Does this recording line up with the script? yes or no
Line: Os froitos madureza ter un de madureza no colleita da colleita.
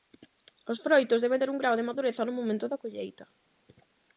no